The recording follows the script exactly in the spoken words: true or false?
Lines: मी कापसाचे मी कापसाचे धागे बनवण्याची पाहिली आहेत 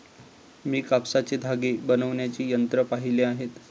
false